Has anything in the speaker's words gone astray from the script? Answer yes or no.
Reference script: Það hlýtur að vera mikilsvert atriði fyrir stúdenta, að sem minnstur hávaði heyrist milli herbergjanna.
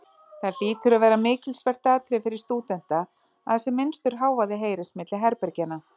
no